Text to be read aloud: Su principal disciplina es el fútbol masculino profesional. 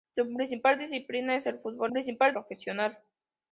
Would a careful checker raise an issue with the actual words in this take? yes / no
yes